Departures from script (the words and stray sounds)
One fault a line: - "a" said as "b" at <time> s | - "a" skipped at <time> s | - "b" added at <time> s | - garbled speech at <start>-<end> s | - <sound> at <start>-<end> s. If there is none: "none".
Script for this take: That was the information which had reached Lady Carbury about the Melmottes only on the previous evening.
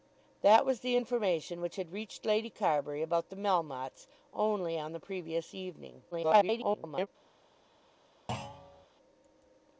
- garbled speech at 6.1-7.1 s
- thud at 8.3-8.9 s